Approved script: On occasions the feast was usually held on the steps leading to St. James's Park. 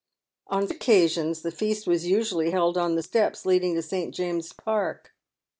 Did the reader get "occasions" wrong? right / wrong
right